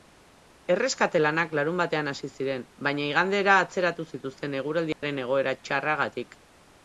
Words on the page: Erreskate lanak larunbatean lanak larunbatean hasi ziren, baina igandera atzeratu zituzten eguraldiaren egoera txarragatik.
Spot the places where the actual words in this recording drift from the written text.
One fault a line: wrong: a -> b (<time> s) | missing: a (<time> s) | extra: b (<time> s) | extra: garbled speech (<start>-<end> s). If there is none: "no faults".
missing: lanak larunbatean (2.1 s)